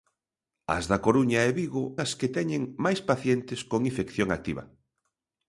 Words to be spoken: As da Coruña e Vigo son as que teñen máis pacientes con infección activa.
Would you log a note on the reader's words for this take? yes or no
yes